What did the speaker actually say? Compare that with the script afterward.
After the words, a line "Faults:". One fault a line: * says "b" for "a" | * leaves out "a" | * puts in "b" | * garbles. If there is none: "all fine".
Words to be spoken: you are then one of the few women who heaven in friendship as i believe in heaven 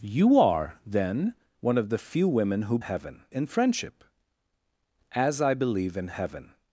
you are then one of the few women who heaven in friendship as i believe in heaven
Faults:
all fine